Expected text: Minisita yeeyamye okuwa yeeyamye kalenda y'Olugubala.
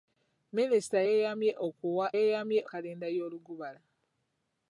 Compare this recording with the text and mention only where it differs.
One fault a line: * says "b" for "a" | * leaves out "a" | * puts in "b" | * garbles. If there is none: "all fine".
all fine